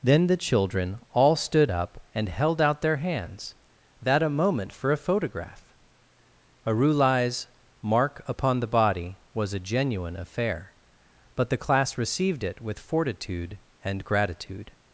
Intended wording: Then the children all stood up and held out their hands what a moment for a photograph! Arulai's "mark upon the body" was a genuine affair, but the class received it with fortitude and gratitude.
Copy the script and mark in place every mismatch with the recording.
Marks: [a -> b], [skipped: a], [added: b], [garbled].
Then the children all stood up and held out their hands [what -> that] a moment for a photograph! Arulai's "mark upon the body" was a genuine affair, but the class received it with fortitude and gratitude.